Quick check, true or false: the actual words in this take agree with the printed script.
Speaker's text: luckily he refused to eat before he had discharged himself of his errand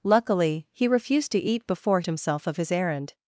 false